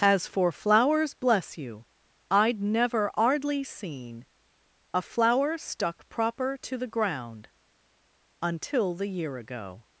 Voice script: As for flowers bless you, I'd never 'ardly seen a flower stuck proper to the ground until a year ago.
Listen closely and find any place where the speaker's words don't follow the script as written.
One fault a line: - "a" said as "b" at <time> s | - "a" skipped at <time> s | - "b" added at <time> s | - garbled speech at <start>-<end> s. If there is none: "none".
- "a" said as "the" at 8.9 s